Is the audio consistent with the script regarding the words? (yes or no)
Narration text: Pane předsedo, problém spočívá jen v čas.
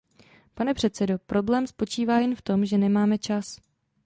no